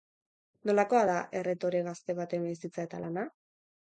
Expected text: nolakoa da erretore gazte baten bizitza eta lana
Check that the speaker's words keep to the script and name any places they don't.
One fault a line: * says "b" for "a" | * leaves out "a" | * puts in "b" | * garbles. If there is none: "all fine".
all fine